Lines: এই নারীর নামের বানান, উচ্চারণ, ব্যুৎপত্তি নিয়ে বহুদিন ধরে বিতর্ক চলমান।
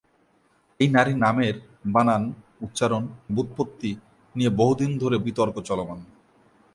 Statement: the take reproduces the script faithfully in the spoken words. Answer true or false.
true